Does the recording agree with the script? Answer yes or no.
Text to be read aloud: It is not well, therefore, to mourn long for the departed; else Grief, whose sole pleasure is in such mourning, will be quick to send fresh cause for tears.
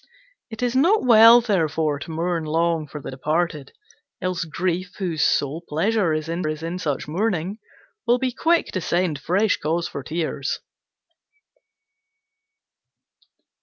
no